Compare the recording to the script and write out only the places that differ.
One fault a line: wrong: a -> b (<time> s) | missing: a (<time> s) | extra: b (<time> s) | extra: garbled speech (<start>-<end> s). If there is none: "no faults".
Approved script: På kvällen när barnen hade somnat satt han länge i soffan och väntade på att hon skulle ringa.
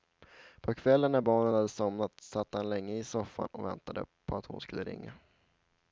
no faults